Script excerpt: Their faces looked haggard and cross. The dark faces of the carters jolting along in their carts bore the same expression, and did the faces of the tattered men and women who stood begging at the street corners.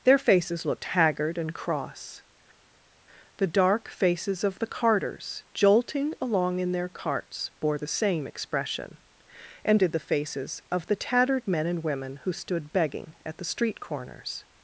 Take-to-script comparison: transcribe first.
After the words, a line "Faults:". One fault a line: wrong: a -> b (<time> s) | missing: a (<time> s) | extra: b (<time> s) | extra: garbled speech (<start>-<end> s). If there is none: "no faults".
Their faces looked haggard and cross. The dark faces of the carters jolting along in their carts bore the same expression, and did the faces of the tattered men and women who stood begging at the street corners.
Faults:
no faults